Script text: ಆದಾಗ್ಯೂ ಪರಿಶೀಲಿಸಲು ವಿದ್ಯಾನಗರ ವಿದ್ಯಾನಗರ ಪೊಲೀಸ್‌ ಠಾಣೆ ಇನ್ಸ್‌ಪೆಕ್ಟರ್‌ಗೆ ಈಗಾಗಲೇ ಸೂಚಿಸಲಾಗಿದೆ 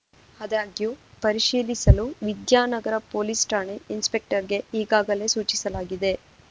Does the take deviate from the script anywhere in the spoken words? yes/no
yes